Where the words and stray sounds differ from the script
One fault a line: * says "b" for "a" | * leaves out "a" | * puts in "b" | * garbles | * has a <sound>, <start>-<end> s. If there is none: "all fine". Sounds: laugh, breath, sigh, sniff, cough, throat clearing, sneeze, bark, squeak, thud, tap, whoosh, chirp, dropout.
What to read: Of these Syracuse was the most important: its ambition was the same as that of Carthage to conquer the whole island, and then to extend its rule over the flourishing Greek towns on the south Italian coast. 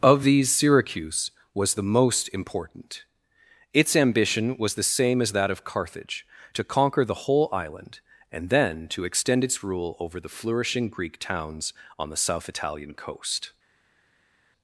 all fine